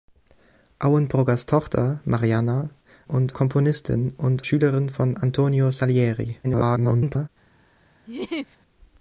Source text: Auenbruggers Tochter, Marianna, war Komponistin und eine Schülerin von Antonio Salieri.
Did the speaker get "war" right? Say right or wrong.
wrong